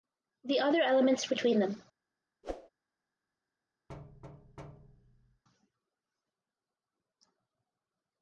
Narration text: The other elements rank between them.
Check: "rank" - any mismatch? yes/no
yes